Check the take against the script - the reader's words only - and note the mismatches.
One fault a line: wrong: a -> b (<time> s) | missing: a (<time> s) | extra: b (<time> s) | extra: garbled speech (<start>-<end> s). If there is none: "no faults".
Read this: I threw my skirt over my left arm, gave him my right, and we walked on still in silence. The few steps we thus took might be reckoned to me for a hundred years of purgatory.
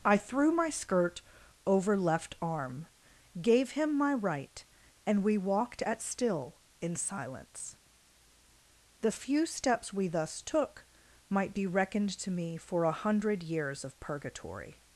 missing: my (2.0 s)
wrong: on -> at (5.8 s)